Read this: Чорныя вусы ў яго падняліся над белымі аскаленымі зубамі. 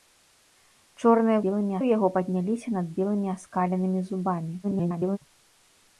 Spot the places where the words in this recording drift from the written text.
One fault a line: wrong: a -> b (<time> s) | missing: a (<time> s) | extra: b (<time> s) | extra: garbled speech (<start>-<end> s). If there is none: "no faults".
wrong: вусы -> белымі (1.5 s)
extra: garbled speech (4.6-5.2 s)